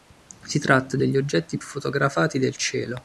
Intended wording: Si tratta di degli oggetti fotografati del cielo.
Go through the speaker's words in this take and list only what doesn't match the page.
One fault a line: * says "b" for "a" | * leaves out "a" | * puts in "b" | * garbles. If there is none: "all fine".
all fine